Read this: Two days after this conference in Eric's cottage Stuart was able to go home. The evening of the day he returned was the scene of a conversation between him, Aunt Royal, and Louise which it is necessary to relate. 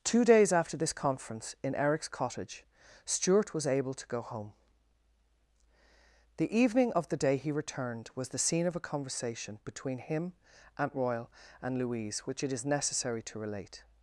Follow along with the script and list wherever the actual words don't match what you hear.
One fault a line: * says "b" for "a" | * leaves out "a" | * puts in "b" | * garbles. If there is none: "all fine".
all fine